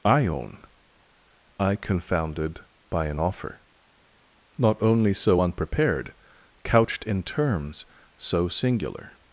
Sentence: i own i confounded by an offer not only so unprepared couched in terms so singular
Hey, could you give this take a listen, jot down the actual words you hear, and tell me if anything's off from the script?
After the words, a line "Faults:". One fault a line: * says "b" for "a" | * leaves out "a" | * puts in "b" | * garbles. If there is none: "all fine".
i own i confounded by an offer not only so unprepared couched in terms so singular
Faults:
all fine